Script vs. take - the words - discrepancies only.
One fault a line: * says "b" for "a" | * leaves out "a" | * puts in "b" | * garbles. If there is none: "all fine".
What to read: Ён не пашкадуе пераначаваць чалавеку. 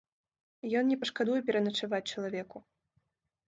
all fine